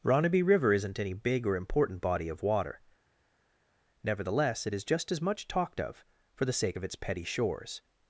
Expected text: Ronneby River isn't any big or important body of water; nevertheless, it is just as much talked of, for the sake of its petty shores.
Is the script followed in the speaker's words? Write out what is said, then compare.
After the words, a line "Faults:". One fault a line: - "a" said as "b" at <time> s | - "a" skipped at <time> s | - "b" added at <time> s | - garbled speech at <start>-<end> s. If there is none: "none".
Ronneby River isn't any big or important body of water; nevertheless, it is just as much talked of, for the sake of its petty shores.
Faults:
none